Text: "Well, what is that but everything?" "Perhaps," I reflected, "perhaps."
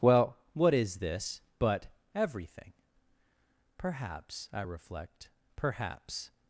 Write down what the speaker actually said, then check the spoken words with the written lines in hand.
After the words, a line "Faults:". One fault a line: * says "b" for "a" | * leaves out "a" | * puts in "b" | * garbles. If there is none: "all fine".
"Well, what is this but everything?" "Perhaps," I reflect, "perhaps."
Faults:
* says "this" for "that"
* says "reflect" for "reflected"